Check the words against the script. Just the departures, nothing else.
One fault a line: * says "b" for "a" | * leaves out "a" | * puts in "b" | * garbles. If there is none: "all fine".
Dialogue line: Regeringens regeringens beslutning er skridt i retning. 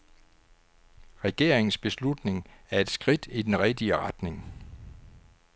* leaves out "regeringens"
* puts in "et"
* puts in "den rigtige"